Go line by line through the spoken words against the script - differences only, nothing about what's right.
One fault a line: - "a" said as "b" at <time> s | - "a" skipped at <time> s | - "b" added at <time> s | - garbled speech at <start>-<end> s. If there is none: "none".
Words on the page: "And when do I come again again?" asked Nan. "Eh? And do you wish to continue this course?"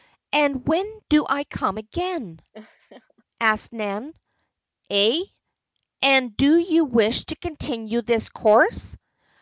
- "again" skipped at 2.4 s